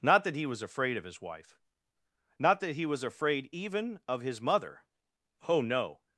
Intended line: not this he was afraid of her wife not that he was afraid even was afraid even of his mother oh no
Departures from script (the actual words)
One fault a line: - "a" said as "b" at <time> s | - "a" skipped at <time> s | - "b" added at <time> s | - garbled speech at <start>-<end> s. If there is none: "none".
- "this" said as "that" at 0.2 s
- "her" said as "his" at 1.0 s
- "was afraid even" skipped at 4.0 s